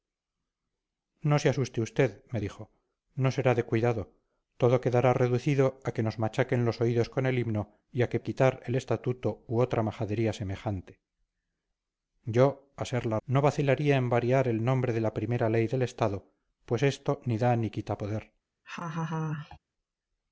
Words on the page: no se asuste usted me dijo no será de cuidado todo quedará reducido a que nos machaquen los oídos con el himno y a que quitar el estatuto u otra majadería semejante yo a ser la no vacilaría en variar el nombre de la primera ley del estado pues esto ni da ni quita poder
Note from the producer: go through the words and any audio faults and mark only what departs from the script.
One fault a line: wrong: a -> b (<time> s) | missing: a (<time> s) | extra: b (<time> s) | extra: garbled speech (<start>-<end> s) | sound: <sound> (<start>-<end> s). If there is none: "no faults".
sound: laugh (18.6-19.6 s)